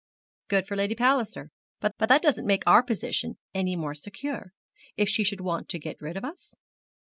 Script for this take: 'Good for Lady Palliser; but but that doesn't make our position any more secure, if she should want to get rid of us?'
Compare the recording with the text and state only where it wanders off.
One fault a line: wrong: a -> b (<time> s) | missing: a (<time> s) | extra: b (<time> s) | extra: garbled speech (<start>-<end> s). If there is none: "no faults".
no faults